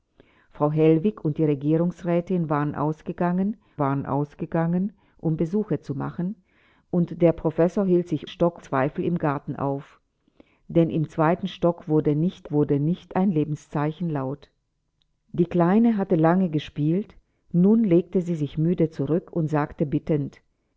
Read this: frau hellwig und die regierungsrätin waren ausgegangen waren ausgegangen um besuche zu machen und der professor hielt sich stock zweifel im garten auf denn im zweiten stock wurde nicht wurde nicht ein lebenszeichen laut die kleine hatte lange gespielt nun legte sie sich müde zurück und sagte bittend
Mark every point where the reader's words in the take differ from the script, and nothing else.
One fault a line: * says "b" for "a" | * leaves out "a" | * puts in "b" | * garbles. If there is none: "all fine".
all fine